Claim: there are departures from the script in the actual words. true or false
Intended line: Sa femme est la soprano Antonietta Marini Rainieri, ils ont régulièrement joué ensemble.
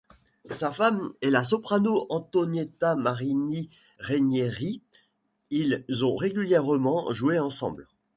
false